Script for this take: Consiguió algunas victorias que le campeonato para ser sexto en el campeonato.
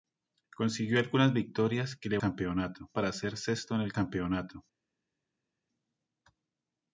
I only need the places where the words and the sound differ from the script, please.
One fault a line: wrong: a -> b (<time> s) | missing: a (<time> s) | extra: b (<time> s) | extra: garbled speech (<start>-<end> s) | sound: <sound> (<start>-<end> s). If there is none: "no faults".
no faults